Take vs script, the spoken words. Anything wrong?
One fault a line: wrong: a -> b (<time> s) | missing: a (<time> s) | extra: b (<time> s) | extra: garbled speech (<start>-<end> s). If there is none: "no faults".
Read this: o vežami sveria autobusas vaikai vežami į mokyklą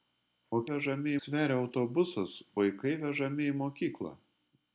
no faults